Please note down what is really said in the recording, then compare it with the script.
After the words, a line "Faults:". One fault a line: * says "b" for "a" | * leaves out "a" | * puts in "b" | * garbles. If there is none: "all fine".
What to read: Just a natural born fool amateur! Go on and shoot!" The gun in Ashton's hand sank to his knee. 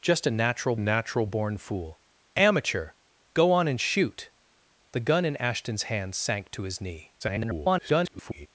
Just a natural natural born fool amateur! Go on and shoot!" The gun in Ashton's hand sank to his knee. [garbled]
Faults:
* puts in "natural"
* garbles